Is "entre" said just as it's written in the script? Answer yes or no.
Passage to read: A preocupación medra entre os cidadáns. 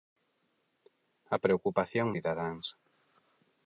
no